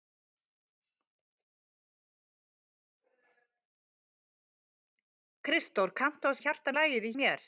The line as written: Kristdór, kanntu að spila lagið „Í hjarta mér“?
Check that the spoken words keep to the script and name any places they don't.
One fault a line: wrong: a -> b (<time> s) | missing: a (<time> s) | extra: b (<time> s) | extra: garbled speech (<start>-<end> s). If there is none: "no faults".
wrong: spila -> hjarta (6.4 s)
missing: hjarta (7.2 s)